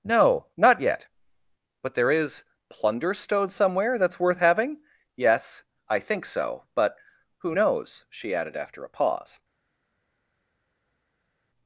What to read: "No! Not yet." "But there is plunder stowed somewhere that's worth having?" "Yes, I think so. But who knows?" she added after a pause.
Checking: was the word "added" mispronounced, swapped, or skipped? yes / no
no